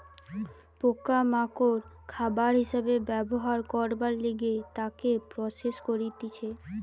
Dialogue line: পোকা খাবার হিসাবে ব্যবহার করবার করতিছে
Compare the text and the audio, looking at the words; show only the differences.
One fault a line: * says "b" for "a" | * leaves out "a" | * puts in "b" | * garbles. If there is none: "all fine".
* puts in "মাকড়"
* puts in "লিগে তাকে প্রসেস"